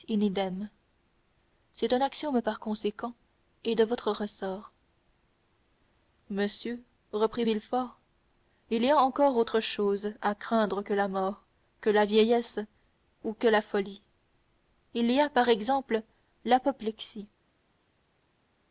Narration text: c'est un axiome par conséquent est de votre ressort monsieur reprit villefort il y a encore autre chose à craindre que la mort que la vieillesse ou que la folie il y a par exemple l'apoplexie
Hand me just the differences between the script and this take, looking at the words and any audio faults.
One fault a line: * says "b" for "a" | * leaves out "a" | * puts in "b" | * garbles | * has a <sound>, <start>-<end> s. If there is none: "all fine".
all fine